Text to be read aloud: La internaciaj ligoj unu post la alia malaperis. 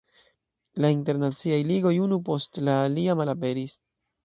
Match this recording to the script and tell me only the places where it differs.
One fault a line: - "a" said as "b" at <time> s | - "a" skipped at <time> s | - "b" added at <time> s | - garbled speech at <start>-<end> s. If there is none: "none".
none